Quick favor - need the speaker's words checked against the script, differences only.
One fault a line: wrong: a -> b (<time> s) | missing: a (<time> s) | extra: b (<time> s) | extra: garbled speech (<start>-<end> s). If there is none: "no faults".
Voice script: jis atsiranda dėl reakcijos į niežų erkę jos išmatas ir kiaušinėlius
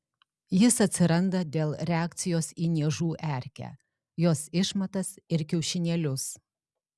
no faults